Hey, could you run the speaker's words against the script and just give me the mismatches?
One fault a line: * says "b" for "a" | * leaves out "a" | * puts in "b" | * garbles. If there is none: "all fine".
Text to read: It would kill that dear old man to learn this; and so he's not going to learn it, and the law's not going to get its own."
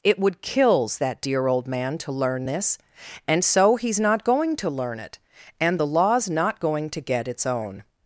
* says "kills" for "kill"